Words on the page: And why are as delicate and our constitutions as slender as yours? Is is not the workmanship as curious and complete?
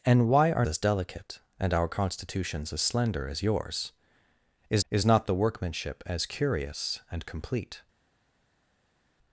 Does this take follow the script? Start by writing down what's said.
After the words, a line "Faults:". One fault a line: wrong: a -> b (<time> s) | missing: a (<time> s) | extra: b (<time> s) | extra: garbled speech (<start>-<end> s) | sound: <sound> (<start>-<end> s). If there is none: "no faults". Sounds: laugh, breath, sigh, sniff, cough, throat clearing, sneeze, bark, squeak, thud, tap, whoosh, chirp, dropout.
And why are as delicate and our constitutions as slender as yours? Is is not the workmanship as curious and complete?
Faults:
no faults